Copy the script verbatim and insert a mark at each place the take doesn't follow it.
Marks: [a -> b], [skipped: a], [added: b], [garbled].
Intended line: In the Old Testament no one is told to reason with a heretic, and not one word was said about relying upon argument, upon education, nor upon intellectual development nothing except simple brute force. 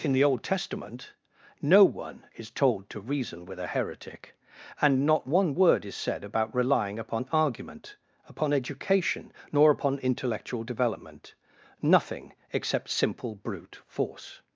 In the Old Testament no one is told to reason with a heretic, and not one word [was -> is] said about relying upon argument, upon education, nor upon intellectual development nothing except simple brute force.